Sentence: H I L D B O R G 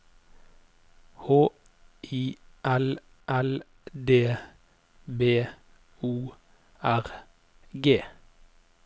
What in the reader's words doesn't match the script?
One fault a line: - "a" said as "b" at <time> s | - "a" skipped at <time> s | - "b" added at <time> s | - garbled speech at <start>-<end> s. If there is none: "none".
- "L" added at 3.3 s